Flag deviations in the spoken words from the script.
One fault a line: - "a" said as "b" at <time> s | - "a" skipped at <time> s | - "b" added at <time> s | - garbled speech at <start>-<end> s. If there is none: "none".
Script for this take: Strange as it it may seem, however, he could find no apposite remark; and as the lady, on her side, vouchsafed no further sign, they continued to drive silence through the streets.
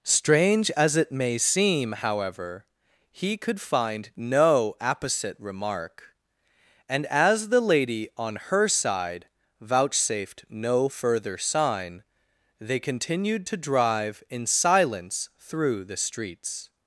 - "it" skipped at 1.1 s
- "in" added at 14.3 s